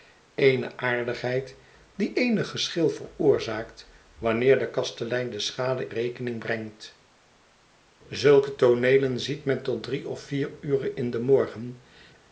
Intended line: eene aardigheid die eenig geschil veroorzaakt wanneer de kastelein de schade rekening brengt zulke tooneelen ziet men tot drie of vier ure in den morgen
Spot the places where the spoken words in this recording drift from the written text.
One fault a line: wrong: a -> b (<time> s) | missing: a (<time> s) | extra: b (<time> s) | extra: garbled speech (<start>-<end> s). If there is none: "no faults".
no faults